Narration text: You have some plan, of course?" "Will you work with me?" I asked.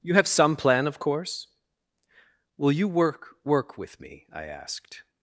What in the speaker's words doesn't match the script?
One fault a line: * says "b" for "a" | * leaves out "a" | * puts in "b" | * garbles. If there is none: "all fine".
* puts in "work"